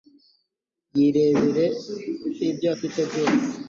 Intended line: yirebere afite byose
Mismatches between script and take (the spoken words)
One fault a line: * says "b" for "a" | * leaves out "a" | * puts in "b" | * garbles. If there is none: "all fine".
* puts in "ibyo"